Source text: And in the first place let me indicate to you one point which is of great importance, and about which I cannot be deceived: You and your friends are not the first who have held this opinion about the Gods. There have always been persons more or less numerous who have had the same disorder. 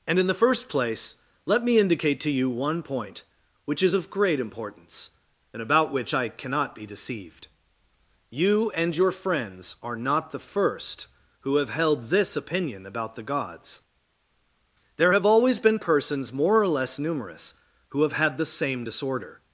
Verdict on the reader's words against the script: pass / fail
pass